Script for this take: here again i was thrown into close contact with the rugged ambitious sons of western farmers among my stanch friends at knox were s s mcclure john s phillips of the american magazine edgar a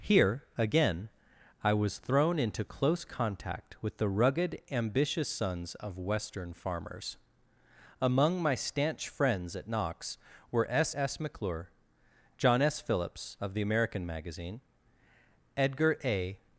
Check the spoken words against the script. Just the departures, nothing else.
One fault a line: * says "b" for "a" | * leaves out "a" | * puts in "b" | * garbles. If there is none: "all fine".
all fine